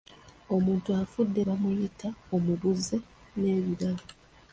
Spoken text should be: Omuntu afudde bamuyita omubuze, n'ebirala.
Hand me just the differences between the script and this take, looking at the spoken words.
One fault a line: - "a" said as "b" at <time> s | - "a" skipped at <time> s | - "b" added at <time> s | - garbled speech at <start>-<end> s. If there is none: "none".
none